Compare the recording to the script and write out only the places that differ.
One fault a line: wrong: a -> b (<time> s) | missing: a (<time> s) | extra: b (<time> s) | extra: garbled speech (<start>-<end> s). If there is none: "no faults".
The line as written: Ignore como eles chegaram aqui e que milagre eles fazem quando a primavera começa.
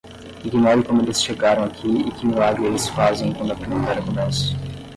no faults